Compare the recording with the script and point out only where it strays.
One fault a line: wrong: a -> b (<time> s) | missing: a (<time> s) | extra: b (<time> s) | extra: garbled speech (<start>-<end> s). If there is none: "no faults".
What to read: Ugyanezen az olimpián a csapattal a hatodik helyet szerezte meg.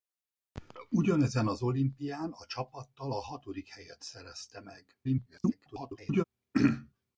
extra: garbled speech (5.0-6.2 s)